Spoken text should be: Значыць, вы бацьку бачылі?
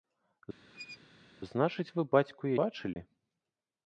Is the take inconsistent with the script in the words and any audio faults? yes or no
yes